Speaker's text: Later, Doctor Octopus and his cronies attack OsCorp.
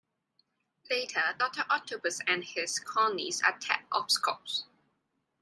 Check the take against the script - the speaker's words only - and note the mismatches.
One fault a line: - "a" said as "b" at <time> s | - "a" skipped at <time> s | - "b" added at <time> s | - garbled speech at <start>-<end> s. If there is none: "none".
none